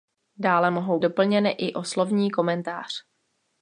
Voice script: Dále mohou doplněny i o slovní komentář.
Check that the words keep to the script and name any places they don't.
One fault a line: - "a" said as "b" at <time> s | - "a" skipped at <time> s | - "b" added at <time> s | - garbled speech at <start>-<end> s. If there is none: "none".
none